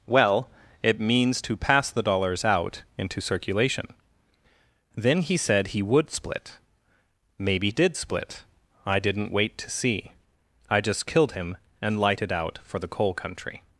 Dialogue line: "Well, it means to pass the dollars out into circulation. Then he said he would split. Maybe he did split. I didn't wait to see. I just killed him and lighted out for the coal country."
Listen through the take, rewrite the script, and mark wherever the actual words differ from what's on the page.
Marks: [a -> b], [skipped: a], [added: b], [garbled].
"Well, it means to pass the dollars out into circulation. Then he said he would split. Maybe [skipped: he] did split. I didn't wait to see. I just killed him and lighted out for the coal country."